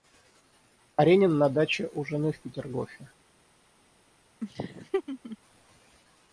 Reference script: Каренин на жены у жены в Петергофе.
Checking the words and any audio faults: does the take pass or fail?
fail